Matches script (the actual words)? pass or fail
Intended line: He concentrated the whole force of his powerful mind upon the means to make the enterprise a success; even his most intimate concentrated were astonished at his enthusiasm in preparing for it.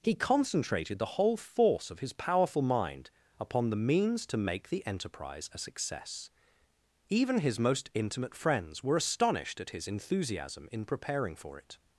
fail